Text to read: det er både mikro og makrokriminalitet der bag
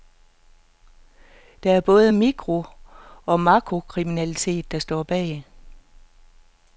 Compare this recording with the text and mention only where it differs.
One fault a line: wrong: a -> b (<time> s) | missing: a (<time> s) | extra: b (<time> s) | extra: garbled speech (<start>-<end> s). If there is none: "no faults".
extra: står (4.8 s)